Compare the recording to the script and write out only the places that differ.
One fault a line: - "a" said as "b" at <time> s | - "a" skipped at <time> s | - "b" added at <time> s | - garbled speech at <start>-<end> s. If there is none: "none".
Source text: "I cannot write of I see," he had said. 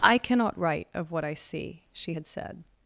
- "what" added at 1.1 s
- "he" said as "she" at 1.9 s